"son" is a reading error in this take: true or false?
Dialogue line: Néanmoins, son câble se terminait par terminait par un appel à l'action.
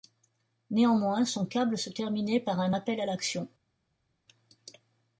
false